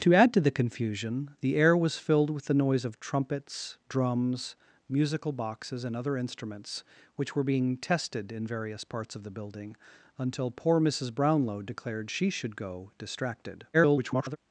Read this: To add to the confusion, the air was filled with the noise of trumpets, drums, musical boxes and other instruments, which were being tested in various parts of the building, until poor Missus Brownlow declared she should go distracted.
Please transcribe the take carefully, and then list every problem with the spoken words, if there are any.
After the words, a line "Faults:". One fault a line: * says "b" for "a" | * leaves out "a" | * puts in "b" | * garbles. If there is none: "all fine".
To add to the confusion, the air was filled with the noise of trumpets, drums, musical boxes and other instruments, which were being tested in various parts of the building, until poor Missus Brownlow declared she should go distracted. [garbled]
Faults:
* garbles